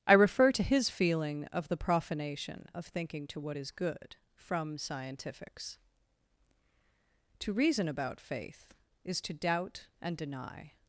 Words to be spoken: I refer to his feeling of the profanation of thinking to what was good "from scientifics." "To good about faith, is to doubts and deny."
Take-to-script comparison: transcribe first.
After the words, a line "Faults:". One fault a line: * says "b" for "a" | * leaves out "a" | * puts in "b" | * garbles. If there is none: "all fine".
I refer to his feeling of the profanation of thinking to what is good "from scientifics." "To reason about faith, is to doubt and deny."
Faults:
* says "is" for "was"
* says "reason" for "good"
* says "doubt" for "doubts"